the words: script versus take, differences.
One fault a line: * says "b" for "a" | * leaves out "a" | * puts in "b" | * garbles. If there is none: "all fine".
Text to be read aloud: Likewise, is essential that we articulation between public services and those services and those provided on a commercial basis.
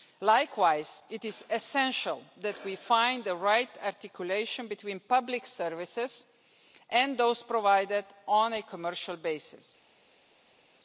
* puts in "it"
* puts in "find the right"
* leaves out "services and those"